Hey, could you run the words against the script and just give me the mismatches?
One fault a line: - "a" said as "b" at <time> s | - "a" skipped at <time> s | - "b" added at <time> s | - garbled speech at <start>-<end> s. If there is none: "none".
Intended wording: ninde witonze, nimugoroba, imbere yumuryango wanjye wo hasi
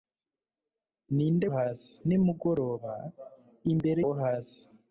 - "witonze" said as "hasi" at 1.5 s
- "yumuryango wanjye" skipped at 4.0 s